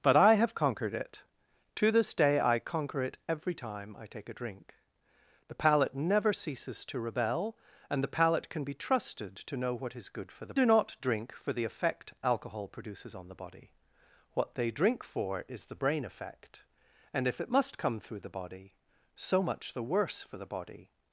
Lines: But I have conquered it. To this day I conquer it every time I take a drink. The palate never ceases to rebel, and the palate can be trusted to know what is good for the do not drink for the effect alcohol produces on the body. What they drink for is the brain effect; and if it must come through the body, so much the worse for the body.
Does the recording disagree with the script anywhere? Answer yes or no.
no